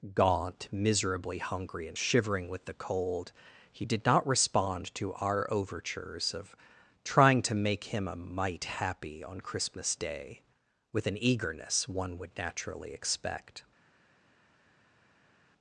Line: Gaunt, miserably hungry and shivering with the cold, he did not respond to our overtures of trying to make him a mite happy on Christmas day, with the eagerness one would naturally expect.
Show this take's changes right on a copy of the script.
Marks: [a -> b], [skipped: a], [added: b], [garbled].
Gaunt, miserably hungry and shivering with the cold, he did not respond to our overtures of trying to make him a mite happy on Christmas day, with [the -> an] eagerness one would naturally expect.